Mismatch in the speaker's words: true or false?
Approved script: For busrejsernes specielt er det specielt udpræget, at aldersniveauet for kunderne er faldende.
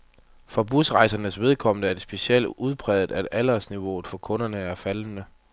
true